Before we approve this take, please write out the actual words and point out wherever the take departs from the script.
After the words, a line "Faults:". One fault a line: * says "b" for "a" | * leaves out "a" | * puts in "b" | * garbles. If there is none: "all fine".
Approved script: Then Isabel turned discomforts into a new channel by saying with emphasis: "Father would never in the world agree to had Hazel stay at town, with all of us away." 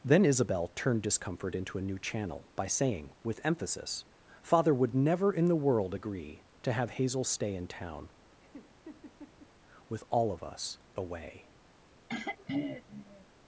Then Isabel turned discomfort into a new channel by saying with emphasis: "Father would never in the world agree to have Hazel stay in town, with all of us away."
Faults:
* says "discomfort" for "discomforts"
* says "have" for "had"
* says "in" for "at"